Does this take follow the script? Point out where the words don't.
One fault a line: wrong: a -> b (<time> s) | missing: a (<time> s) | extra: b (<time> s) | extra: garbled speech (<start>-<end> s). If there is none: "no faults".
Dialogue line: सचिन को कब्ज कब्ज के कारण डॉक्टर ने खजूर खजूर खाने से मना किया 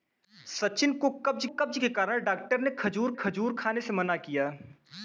no faults